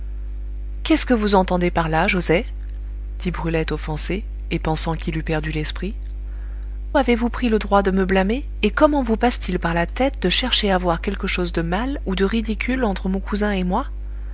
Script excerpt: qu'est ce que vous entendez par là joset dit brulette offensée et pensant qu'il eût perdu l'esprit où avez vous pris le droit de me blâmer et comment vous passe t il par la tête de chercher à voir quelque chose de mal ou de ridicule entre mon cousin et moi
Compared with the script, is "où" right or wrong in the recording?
wrong